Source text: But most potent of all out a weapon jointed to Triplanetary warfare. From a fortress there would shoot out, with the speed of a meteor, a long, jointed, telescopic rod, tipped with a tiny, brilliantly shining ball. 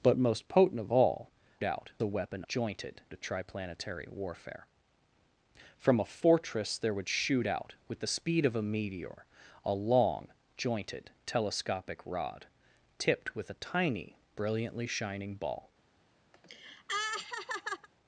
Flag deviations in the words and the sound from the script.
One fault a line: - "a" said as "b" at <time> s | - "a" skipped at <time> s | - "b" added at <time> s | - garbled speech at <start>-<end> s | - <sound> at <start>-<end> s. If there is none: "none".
- laugh at 16.3-17.9 s